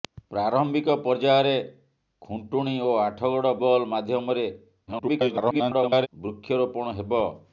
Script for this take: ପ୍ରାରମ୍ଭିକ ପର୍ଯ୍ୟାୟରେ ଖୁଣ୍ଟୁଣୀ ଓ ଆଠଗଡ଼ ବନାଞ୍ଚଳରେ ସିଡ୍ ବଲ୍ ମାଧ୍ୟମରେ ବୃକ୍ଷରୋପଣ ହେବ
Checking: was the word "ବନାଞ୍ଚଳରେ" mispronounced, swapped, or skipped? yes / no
yes